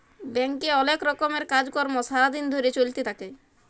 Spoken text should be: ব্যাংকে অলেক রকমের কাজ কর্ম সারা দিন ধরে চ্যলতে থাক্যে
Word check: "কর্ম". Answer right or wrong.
right